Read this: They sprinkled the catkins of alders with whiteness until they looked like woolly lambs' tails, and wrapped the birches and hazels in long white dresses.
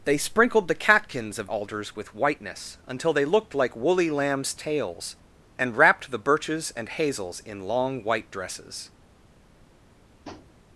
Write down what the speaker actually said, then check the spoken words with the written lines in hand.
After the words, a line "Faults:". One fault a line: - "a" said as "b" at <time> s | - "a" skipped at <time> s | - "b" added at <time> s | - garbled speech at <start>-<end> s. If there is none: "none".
They sprinkled the catkins of alders with whiteness until they looked like woolly lambs' tails, and wrapped the birches and hazels in long white dresses.
Faults:
none